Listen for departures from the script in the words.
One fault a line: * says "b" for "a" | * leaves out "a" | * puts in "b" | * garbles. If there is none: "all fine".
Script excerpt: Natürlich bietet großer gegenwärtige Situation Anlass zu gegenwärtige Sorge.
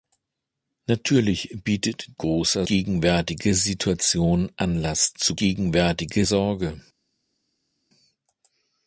all fine